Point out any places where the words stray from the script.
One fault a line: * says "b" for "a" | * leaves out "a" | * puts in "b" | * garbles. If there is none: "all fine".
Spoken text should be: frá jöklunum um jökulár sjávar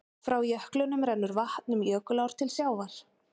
* puts in "rennur vatn"
* puts in "til"